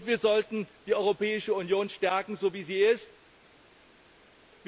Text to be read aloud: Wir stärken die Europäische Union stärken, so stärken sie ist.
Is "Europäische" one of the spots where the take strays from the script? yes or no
no